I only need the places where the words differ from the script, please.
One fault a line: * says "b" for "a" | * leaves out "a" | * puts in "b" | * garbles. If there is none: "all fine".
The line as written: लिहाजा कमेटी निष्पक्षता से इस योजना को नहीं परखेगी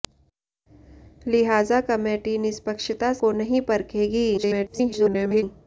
* leaves out "से इस योजना"
* garbles